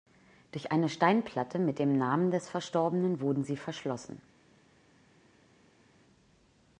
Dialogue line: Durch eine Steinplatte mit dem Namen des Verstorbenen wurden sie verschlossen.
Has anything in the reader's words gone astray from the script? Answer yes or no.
no